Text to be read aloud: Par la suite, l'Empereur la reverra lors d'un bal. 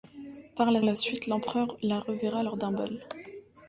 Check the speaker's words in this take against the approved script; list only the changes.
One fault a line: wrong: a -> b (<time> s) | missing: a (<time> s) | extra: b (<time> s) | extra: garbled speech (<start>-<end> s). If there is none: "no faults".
extra: la (0.8 s)